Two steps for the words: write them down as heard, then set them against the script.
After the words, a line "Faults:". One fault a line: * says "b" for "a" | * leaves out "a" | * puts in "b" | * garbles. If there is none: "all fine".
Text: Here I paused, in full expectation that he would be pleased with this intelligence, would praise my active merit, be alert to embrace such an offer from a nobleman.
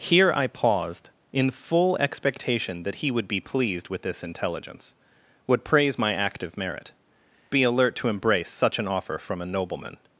Here I paused, in full expectation that he would be pleased with this intelligence, would praise my active merit, be alert to embrace such an offer from a nobleman.
Faults:
all fine